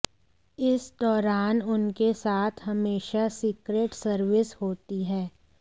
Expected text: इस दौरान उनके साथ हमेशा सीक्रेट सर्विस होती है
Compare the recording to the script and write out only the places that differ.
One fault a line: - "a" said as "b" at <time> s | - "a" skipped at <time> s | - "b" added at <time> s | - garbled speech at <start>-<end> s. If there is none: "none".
none